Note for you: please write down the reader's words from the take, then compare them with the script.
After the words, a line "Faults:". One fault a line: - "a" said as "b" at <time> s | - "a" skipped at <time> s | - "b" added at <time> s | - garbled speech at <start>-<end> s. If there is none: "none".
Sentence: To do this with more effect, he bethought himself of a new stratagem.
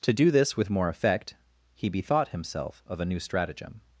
To do this with more effect, he bethought himself of a new stratagem.
Faults:
none